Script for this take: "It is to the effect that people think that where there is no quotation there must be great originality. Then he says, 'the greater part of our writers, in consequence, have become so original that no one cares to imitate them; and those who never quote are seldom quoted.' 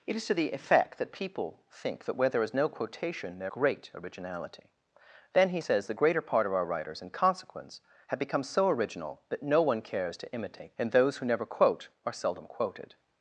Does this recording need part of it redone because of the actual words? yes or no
yes